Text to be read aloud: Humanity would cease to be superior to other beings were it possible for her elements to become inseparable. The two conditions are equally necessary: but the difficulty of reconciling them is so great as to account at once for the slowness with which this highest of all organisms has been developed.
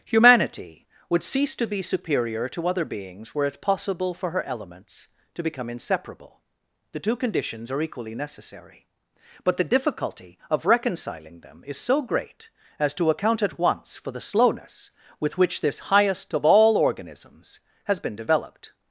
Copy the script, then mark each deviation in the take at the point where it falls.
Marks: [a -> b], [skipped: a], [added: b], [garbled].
Humanity would cease to be superior to other beings were it possible for her elements to become inseparable. The two conditions are equally necessary: but the difficulty of reconciling them is so great as to account at once for the slowness with which this highest of all organisms has been developed.